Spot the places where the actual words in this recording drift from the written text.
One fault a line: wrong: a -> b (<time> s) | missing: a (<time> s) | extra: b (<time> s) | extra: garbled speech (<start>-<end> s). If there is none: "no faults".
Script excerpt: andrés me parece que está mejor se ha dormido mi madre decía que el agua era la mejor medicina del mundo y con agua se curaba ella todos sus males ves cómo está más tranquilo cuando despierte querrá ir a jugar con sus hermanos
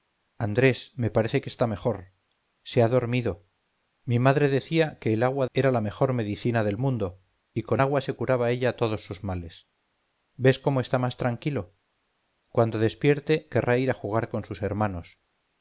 no faults